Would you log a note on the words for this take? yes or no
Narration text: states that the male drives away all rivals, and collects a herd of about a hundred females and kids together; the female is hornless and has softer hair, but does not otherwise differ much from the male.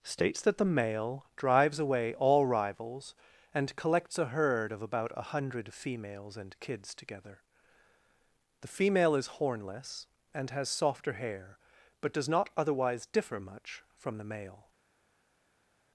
no